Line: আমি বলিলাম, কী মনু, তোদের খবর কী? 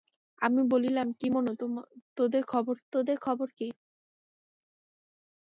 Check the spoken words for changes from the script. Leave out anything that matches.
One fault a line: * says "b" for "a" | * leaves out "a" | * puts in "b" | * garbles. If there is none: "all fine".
* puts in "তোদের খবর"